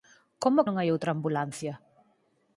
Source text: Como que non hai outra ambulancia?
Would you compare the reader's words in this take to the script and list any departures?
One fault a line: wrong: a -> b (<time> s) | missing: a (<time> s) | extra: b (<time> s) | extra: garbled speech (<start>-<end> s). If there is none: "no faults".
missing: que (0.7 s)